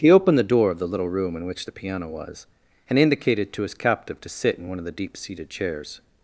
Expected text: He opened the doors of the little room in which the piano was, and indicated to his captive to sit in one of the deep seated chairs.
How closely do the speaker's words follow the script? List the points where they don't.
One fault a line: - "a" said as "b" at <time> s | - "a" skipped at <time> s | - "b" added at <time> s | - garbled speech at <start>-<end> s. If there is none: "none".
- "doors" said as "door" at 0.4 s